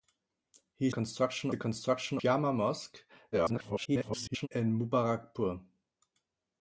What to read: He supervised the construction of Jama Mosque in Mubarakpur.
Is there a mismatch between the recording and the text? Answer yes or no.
yes